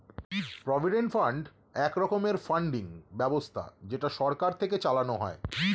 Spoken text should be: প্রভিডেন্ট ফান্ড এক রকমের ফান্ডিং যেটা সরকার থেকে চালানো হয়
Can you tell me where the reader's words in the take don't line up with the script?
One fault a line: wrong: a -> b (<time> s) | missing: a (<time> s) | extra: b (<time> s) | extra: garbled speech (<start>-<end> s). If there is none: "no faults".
extra: ব্যবস্থা (3.1 s)